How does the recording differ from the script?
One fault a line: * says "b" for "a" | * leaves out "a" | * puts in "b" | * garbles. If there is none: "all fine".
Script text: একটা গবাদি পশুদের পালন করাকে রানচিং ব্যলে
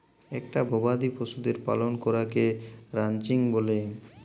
all fine